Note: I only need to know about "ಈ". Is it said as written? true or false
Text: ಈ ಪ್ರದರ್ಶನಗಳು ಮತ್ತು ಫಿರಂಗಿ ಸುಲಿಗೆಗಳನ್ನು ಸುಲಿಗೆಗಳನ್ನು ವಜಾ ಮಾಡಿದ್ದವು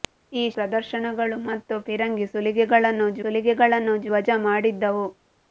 true